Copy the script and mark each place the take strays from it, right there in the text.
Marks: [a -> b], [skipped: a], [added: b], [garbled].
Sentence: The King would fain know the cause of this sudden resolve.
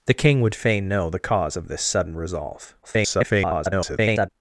The King would fain know the cause of this sudden resolve. [garbled]